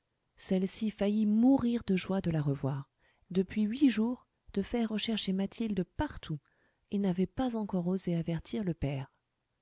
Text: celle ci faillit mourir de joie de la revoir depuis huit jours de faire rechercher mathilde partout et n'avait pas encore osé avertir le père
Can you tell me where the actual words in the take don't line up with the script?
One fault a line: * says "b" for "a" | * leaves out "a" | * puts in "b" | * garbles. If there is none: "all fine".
all fine